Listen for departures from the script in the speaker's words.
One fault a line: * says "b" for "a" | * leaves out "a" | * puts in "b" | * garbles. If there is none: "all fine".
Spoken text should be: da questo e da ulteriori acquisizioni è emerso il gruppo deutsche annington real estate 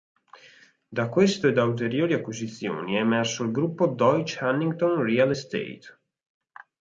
all fine